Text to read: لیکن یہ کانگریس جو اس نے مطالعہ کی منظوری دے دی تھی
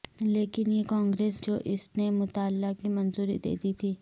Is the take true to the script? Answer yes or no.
yes